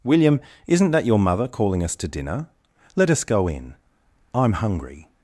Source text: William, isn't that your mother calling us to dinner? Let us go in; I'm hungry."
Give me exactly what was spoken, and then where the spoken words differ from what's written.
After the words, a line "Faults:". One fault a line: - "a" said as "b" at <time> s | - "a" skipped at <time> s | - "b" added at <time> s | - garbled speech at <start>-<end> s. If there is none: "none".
William, isn't that your mother calling us to dinner? Let us go in; I'm hungry."
Faults:
none